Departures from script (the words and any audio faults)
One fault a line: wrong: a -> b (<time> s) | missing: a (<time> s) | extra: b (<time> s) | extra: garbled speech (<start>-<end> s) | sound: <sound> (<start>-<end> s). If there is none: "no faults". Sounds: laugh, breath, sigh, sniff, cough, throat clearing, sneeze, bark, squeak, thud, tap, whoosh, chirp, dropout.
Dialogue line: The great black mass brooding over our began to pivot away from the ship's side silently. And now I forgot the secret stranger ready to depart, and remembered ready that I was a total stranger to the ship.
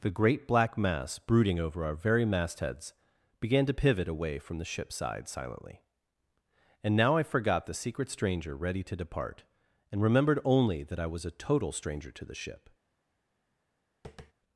extra: very mastheads (1.9 s)
wrong: ready -> only (10.4 s)
sound: tap (14.0-14.3 s)